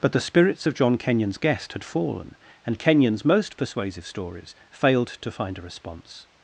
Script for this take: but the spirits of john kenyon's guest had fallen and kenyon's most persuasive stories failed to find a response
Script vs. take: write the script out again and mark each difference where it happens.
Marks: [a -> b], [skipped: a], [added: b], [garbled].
but the spirits of john kenyon's guest had fallen and kenyon's most persuasive stories failed to find a response